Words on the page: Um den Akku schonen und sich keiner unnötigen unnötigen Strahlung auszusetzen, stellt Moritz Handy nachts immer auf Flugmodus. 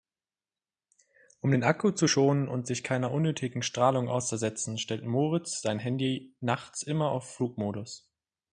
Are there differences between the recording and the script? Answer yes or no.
yes